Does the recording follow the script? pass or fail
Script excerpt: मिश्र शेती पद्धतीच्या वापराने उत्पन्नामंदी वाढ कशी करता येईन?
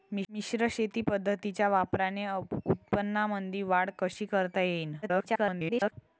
fail